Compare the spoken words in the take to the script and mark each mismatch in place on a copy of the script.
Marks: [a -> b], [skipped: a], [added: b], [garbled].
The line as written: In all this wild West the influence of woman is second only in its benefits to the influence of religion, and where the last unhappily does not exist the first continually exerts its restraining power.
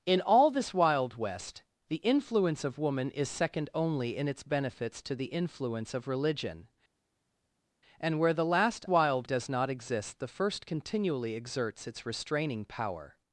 In all this wild West the influence of woman is second only in its benefits to the influence of religion, and where the last [unhappily -> wild] does not exist the first continually exerts its restraining power.